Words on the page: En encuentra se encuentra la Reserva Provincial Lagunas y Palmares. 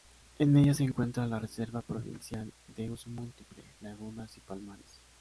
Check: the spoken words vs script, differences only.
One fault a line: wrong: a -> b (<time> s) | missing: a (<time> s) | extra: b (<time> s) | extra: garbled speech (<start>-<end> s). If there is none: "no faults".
wrong: encuentra -> ella (0.6 s)
extra: de Uso Múltiple (2.7 s)